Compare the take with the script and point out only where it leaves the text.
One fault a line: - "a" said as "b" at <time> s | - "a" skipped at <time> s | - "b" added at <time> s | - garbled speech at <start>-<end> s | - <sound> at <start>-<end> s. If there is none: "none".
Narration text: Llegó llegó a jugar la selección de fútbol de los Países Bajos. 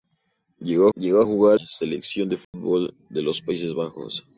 - dropout at 2.4-2.5 s